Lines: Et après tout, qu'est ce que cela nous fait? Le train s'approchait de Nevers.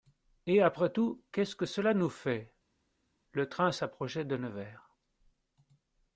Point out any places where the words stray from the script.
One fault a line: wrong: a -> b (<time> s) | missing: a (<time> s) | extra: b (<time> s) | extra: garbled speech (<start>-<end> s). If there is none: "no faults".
no faults